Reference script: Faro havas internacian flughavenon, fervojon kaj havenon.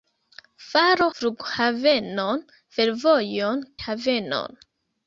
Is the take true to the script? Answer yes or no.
no